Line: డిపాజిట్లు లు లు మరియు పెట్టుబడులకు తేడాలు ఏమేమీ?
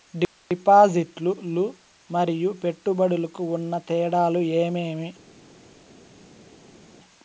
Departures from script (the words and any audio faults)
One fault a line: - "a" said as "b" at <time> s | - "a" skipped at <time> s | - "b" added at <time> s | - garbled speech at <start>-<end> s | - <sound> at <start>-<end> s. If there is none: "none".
- "లు" skipped at 1.6 s
- "ఉన్న" added at 3.6 s